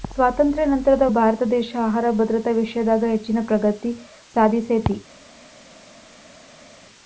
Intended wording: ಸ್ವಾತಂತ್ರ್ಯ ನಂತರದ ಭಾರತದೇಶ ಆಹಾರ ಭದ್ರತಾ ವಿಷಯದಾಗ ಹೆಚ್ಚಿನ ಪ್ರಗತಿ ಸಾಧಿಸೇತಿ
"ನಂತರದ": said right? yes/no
yes